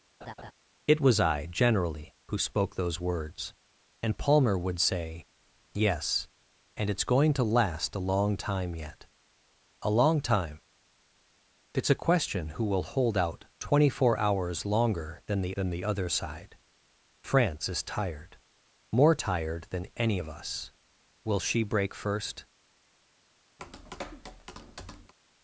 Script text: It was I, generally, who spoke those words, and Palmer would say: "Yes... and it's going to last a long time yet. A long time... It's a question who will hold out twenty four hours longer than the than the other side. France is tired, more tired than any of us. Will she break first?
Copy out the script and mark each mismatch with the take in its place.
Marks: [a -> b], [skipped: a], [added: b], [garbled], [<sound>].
[laugh] It was I, generally, who spoke those words, and Palmer would say: "Yes... and it's going to last a long time yet. A long time... It's a question who will hold out twenty four hours longer than the than the other side. France is tired, more tired than any of us. Will she break first? [tap]